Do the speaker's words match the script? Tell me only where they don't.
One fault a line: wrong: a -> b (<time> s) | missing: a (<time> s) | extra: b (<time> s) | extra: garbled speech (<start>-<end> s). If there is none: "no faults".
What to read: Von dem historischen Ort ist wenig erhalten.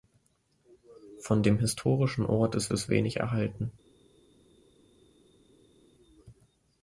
extra: ist (2.7 s)